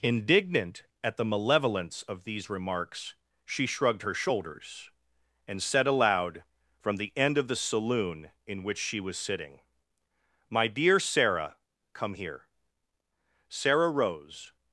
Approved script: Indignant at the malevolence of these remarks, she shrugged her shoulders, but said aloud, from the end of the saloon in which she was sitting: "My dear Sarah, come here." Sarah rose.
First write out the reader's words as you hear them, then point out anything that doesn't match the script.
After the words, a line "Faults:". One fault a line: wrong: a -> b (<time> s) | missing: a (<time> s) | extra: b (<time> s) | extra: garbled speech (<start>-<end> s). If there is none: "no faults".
Indignant at the malevolence of these remarks, she shrugged her shoulders, and said aloud, from the end of the saloon in which she was sitting: "My dear Sarah, come here." Sarah rose.
Faults:
wrong: but -> and (5.5 s)